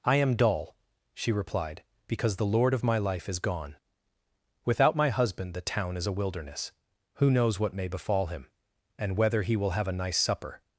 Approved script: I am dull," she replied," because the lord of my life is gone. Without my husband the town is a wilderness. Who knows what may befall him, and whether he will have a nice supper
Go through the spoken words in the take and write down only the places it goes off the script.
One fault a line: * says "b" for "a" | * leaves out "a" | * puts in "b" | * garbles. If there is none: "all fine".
all fine